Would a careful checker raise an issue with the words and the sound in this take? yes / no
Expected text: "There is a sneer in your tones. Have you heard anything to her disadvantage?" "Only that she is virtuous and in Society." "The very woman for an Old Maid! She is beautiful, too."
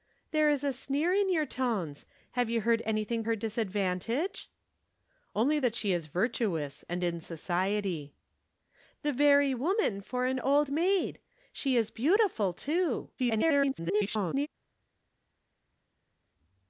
yes